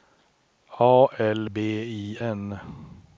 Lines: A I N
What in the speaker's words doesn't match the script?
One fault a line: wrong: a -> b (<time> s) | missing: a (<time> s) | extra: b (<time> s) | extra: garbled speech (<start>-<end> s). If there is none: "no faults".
extra: L B (1.2 s)